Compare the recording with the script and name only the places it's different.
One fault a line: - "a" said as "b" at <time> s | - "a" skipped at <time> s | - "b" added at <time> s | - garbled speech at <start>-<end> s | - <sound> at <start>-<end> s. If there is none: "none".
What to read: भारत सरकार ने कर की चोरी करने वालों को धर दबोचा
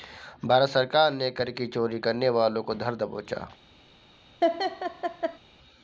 - laugh at 4.4-5.4 s